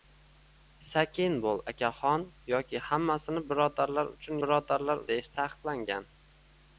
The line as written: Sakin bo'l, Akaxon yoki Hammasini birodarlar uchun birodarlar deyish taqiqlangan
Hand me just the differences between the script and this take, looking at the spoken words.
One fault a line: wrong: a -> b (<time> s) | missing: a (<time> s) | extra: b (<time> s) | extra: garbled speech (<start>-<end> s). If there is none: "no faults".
no faults